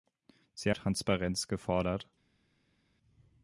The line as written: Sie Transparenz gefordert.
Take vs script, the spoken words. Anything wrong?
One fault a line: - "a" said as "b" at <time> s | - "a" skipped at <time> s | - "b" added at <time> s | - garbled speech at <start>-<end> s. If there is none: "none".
none